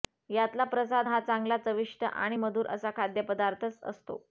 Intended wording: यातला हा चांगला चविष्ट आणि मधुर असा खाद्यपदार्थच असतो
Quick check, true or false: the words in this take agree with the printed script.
false